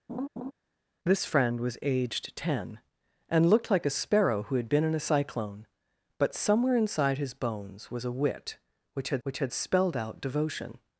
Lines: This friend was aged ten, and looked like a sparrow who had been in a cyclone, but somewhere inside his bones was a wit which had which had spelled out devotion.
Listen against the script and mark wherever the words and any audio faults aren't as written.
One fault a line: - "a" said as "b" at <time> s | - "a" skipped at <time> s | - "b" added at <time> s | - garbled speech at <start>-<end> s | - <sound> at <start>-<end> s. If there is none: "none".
- laugh at 0.1-0.5 s